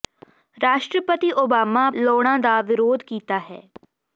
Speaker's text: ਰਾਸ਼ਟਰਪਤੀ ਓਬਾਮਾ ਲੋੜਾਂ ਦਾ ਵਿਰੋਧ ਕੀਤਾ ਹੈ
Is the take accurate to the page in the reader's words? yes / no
yes